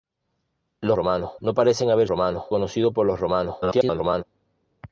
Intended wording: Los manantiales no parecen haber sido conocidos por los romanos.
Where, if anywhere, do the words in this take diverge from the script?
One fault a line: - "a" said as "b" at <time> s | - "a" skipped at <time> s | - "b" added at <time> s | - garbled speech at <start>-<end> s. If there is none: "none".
- "manantiales" said as "romanos" at 0.9 s
- "sido" said as "romanos" at 2.1 s
- garbled speech at 3.6-4.2 s